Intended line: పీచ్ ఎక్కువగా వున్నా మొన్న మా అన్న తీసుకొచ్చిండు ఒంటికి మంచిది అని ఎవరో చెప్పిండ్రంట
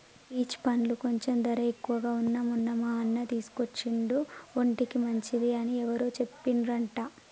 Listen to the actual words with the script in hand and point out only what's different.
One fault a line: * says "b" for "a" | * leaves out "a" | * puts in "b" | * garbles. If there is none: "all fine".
* puts in "పండ్లు కొంచెం ధర"